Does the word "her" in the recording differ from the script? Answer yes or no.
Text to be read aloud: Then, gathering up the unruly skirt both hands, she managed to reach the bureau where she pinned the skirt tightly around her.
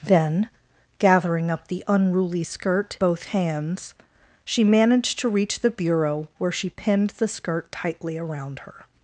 no